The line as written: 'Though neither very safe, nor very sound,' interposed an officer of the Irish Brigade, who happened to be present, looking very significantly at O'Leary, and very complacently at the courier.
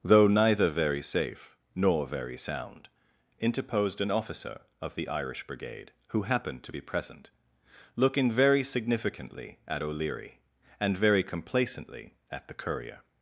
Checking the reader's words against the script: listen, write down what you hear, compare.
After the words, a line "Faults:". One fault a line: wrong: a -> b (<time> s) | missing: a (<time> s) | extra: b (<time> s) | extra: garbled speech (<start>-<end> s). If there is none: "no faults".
'Though neither very safe, nor very sound,' interposed an officer of the Irish Brigade, who happened to be present, looking very significantly at O'Leary, and very complacently at the courier.
Faults:
no faults